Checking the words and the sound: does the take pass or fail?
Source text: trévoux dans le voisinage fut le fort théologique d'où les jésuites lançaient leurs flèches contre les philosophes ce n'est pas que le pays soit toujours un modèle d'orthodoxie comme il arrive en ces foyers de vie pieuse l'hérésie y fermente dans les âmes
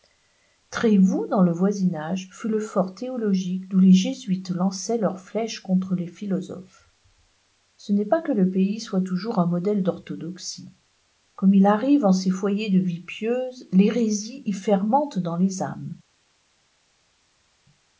pass